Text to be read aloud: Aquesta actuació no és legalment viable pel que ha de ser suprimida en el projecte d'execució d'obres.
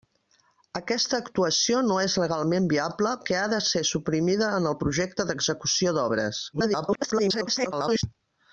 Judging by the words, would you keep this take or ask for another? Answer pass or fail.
fail